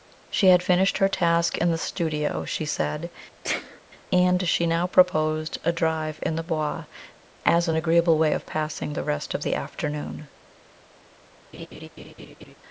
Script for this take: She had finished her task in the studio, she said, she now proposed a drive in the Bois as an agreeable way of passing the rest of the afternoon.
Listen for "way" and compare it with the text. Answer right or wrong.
right